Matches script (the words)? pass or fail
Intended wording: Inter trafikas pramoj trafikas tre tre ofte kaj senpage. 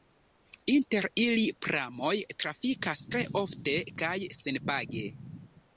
fail